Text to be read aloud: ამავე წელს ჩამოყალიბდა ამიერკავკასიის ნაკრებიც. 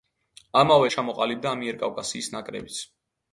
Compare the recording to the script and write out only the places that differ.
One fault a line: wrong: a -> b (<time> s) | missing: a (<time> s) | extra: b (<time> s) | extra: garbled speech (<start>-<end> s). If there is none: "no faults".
missing: წელს (0.9 s)